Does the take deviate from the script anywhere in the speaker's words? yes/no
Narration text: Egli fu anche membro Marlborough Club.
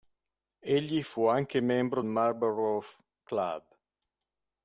no